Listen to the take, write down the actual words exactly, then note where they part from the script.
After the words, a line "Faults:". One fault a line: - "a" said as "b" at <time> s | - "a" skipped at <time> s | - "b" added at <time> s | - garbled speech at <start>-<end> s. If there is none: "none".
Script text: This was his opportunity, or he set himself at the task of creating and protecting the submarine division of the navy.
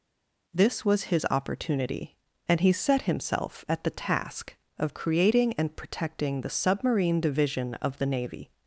This was his opportunity, and he set himself at the task of creating and protecting the submarine division of the navy.
Faults:
- "or" said as "and" at 2.5 s